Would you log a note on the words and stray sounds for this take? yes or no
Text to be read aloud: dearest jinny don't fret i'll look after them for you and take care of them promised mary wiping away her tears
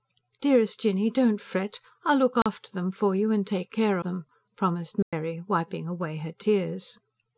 yes